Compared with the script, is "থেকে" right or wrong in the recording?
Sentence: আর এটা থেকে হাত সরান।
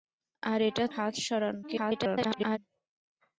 wrong